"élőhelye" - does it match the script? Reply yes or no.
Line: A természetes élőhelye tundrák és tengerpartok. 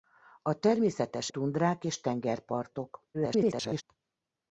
no